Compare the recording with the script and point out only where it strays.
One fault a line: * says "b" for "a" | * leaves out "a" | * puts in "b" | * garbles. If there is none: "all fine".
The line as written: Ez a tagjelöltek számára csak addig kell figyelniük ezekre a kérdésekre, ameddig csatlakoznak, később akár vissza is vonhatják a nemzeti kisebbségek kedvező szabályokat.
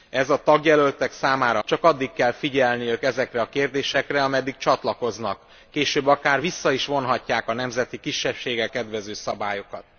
all fine